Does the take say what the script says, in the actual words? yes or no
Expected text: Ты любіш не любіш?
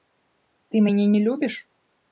no